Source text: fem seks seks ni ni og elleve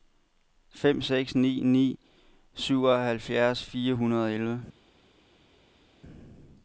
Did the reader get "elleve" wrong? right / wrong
right